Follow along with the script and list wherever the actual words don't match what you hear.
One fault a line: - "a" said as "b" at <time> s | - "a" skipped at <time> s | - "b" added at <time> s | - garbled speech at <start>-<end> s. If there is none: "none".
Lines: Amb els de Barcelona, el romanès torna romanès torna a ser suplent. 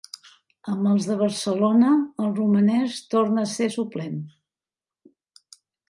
- "romanès torna" skipped at 3.4 s